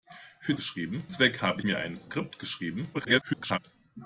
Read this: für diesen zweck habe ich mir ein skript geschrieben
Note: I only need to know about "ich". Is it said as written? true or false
false